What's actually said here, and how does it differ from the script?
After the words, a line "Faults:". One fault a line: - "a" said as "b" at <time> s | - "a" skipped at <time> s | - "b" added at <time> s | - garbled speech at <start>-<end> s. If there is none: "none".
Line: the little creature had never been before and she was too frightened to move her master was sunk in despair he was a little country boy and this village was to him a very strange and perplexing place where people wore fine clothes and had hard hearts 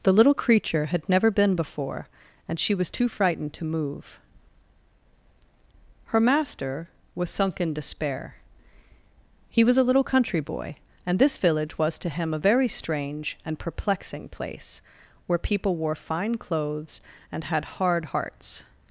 the little creature had never been before and she was too frightened to move her master was sunk in despair he was a little country boy and this village was to him a very strange and perplexing place where people wore fine clothes and had hard hearts
Faults:
none